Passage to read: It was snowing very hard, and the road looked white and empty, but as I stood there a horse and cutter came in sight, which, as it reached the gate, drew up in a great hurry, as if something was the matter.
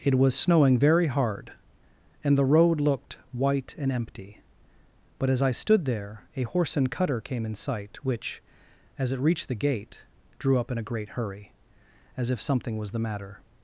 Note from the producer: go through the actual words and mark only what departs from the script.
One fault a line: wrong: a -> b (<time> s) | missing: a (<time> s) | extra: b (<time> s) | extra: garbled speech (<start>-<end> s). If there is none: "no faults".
no faults